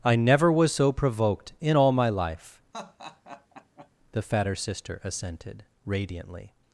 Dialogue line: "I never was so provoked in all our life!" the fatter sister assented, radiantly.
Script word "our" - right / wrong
wrong